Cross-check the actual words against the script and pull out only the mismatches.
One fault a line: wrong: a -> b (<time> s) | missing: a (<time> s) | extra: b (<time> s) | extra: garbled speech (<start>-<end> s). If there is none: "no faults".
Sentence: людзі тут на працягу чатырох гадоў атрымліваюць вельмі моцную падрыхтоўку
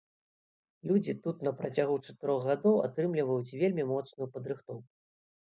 no faults